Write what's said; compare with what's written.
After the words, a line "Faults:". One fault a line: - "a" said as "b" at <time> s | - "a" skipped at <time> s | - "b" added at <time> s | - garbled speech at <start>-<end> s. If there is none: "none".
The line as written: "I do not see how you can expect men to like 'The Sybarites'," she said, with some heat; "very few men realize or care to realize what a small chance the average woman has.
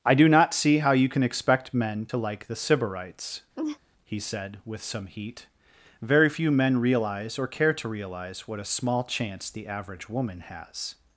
"I do not see how you can expect men to like 'The Sybarites'," he said, with some heat; "very few men realize or care to realize what a small chance the average woman has.
Faults:
- "she" said as "he" at 4.0 s